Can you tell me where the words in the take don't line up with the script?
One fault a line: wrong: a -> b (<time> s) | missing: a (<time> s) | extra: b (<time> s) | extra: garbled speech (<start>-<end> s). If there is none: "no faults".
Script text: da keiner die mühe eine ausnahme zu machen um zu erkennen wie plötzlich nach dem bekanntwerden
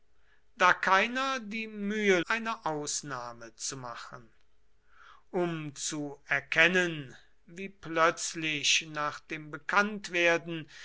no faults